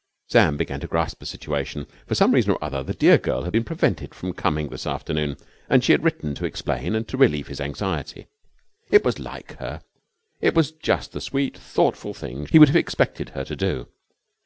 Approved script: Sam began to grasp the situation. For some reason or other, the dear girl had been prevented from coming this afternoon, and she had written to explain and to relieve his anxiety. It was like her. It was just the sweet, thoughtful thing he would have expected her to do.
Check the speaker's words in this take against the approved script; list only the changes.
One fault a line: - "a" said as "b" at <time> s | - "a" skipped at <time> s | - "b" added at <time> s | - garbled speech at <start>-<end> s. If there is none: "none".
none